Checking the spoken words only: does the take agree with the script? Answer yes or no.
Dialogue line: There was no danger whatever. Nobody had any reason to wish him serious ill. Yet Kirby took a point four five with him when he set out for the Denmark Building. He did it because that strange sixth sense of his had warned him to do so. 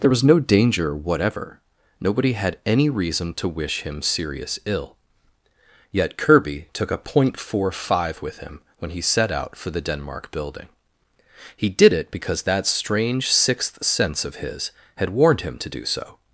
yes